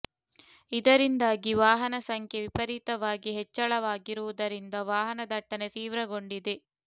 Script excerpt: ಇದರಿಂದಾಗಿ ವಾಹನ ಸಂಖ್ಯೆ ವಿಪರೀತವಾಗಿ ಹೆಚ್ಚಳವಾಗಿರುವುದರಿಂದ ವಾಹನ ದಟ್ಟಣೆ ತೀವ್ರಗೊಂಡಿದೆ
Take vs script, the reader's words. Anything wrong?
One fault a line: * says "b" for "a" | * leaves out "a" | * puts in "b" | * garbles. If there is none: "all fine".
all fine